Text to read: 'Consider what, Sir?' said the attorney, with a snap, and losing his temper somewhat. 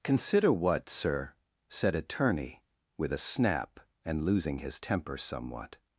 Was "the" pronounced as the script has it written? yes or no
no